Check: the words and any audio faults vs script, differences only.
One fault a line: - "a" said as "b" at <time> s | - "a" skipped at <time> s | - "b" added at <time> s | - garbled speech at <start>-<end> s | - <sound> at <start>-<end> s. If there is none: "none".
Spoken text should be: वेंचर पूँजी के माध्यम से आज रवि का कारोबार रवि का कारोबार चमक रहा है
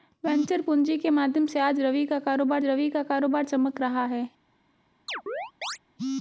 - chirp at 5.1-5.8 s